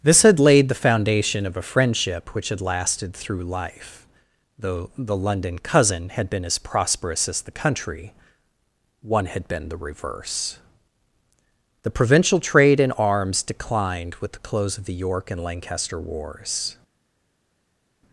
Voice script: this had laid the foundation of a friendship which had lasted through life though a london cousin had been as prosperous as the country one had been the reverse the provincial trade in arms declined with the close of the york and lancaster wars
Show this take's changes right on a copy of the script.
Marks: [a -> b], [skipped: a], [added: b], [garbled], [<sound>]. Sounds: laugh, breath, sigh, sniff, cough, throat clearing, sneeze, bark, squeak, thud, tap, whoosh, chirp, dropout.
this had laid the foundation of a friendship which had lasted through life though [a -> the] london cousin had been as prosperous as the country one had been the reverse the provincial trade in arms declined with the close of the york and lancaster wars